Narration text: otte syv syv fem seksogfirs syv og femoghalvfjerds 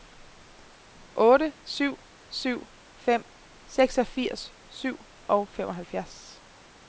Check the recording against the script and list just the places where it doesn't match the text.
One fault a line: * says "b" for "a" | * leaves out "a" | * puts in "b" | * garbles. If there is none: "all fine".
all fine